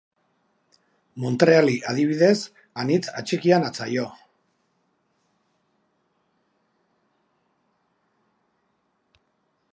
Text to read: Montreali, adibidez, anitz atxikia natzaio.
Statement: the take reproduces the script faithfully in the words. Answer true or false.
true